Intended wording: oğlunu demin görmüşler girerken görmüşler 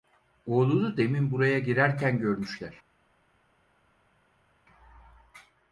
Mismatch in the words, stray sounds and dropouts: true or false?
true